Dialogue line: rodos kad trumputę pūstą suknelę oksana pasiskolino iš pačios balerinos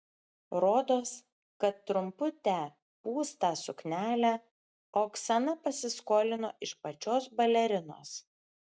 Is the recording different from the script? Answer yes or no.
no